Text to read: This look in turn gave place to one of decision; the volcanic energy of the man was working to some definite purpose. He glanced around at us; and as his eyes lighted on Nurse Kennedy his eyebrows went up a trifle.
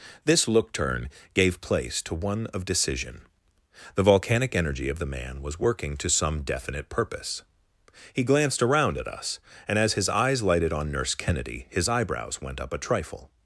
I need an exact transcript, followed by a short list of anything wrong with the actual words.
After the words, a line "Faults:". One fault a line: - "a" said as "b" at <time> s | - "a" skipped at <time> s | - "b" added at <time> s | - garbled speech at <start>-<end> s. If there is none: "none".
This look turn gave place to one of decision; the volcanic energy of the man was working to some definite purpose. He glanced around at us; and as his eyes lighted on Nurse Kennedy his eyebrows went up a trifle.
Faults:
- "in" skipped at 0.7 s